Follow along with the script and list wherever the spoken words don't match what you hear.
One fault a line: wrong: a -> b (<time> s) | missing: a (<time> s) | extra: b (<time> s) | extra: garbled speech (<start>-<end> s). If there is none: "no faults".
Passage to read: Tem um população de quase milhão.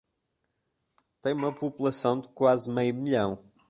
wrong: um -> uma (1.3 s)
extra: meio (2.7 s)